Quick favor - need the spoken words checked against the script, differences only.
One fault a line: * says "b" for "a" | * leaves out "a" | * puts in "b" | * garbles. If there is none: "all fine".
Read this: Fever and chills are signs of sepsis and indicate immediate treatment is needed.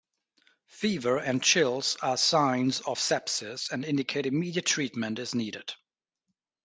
all fine